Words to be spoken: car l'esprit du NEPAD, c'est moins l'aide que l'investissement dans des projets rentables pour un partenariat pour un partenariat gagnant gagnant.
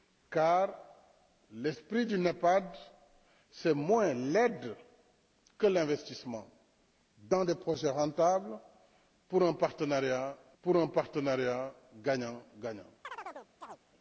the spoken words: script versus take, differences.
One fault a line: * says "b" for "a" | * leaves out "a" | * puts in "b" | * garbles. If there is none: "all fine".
all fine